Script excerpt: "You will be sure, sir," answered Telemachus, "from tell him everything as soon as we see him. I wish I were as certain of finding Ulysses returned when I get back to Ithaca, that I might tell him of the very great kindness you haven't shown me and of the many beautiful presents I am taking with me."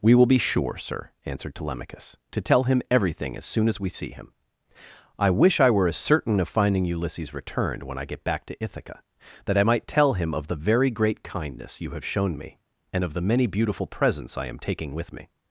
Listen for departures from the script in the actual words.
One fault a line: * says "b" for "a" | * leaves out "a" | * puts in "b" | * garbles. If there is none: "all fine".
* says "We" for "You"
* says "to" for "from"
* says "have" for "haven't"